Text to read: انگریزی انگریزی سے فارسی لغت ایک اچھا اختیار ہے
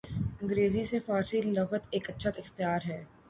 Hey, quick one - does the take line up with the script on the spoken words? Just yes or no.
no